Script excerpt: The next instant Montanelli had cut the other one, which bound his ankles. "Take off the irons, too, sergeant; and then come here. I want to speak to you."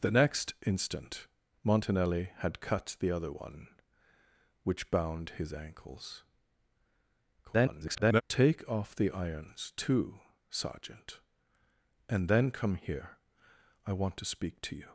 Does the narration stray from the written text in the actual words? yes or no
yes